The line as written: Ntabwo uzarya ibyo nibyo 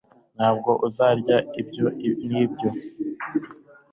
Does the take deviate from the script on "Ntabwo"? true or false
false